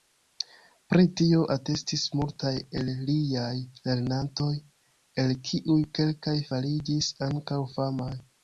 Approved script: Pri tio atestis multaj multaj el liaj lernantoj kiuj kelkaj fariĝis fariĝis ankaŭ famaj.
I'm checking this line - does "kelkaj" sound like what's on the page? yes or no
yes